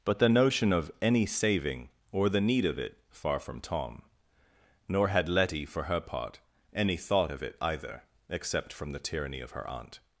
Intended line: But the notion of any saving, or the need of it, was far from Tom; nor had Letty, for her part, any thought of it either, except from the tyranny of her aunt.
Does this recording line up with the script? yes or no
no